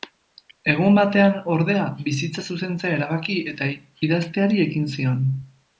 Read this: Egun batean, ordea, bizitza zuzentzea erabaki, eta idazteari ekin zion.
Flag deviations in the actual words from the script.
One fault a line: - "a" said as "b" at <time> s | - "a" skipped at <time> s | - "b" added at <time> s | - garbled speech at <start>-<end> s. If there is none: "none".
none